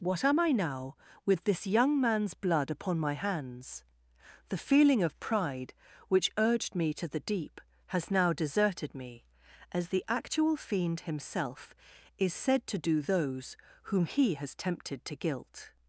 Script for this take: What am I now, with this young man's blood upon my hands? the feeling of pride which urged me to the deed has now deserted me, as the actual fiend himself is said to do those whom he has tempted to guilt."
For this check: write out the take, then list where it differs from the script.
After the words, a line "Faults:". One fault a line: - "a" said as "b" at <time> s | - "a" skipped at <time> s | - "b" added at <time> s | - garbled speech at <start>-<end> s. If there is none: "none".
What am I now, with this young man's blood upon my hands? the feeling of pride which urged me to the deep has now deserted me, as the actual fiend himself is said to do those whom he has tempted to guilt."
Faults:
- "deed" said as "deep" at 7.2 s